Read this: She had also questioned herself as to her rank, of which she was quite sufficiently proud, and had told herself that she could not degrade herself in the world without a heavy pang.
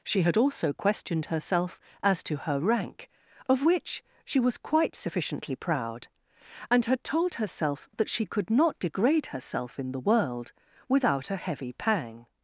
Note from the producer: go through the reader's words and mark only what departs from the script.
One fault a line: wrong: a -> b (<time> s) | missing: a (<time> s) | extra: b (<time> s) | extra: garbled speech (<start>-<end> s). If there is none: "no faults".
no faults